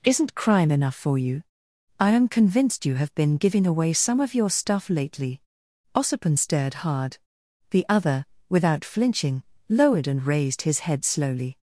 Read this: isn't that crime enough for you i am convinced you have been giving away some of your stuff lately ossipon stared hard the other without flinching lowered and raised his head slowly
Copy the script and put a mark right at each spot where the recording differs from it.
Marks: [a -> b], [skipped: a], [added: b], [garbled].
isn't [skipped: that] crime enough for you i am convinced you have been giving away some of your stuff lately ossipon stared hard the other without flinching lowered and raised his head slowly